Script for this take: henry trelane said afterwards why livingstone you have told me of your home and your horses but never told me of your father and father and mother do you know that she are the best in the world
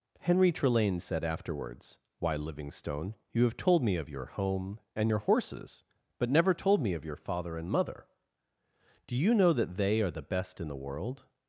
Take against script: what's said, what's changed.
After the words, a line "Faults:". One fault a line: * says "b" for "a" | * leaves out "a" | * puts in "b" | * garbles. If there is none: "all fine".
henry trelane said afterwards why livingstone you have told me of your home and your horses but never told me of your father and mother do you know that they are the best in the world
Faults:
* leaves out "father and"
* says "they" for "she"